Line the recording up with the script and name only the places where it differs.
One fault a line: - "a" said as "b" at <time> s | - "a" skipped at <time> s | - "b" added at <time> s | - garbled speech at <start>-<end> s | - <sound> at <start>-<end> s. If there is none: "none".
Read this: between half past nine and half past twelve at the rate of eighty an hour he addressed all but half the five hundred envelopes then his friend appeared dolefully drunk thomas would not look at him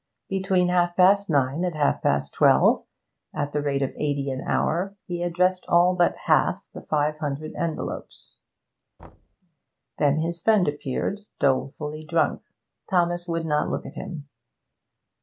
- thud at 9.0-9.4 s